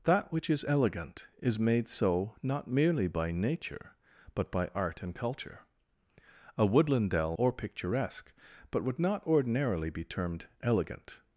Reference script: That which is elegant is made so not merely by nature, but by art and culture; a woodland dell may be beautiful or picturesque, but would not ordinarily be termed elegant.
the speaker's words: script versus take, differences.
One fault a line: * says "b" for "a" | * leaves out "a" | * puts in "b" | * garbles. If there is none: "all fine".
* leaves out "may be beautiful"